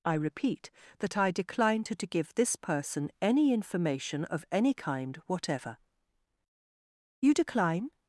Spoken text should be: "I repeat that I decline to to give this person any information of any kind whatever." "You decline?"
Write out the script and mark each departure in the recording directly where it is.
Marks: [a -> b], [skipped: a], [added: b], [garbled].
"I repeat that I decline to to give this person any information of any kind whatever." "You decline?"